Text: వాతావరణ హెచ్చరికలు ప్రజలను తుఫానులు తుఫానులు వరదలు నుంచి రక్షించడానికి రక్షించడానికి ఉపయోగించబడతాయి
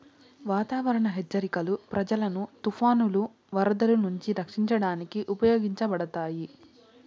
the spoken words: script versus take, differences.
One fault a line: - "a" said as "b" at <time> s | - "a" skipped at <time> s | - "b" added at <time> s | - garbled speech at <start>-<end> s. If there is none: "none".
- "తుఫానులు" skipped at 3.2 s
- "రక్షించడానికి" skipped at 5.2 s